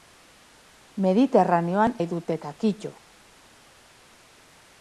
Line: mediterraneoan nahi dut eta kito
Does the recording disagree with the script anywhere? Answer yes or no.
no